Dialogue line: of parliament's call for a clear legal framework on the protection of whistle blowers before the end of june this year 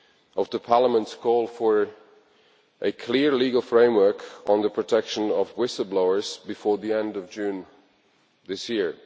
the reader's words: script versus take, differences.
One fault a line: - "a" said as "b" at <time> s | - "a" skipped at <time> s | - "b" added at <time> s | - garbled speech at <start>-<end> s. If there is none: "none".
none